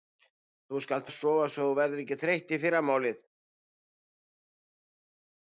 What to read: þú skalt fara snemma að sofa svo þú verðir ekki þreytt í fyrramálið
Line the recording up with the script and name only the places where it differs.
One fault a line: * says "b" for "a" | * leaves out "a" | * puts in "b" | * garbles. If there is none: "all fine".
* leaves out "fara snemma"